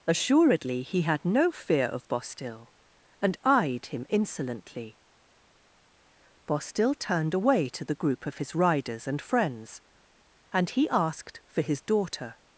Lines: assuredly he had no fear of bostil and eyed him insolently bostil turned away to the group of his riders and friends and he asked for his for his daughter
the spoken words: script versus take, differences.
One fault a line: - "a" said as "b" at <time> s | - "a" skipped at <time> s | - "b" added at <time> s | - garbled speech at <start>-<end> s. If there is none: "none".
- "for his" skipped at 11.8 s